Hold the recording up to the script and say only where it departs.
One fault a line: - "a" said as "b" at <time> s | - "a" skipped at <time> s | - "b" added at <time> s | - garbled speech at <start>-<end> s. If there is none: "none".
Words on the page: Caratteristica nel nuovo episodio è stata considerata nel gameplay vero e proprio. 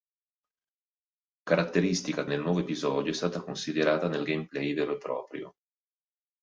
none